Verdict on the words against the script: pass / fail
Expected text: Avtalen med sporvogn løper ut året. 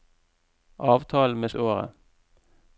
fail